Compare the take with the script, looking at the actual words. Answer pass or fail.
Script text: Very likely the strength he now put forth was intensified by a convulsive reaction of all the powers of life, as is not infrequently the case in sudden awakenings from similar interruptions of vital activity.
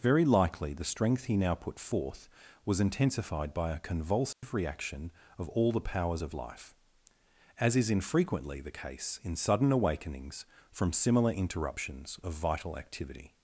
fail